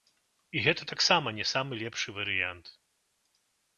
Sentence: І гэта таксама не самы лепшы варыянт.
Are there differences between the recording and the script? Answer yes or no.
no